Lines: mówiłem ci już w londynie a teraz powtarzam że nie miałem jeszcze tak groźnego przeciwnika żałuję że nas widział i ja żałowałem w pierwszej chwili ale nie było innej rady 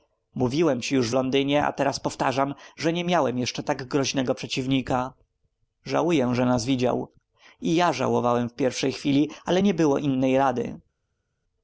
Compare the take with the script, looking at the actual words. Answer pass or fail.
pass